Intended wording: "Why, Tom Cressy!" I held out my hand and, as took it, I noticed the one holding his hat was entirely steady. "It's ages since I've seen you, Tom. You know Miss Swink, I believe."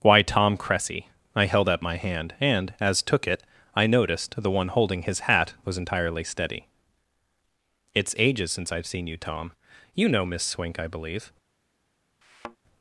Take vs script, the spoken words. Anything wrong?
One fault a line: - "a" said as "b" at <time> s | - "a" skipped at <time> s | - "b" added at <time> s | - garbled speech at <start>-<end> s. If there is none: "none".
none